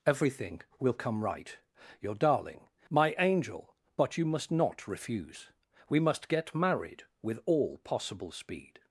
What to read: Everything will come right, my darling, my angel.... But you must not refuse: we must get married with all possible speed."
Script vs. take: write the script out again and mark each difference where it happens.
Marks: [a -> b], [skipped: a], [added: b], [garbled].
Everything will come right, [my -> your] darling, my angel.... But you must not refuse: we must get married with all possible speed."